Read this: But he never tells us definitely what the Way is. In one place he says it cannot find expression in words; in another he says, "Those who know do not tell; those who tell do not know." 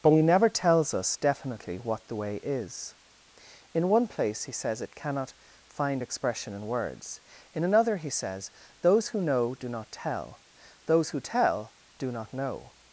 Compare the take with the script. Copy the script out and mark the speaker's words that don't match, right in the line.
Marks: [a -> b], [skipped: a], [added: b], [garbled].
But he never tells us definitely what the Way is. In one place he says it cannot find expression in words; in another he says, "Those who know do not tell; those who tell do not know."